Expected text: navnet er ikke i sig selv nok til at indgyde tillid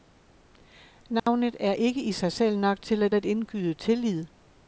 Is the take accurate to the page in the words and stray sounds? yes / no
no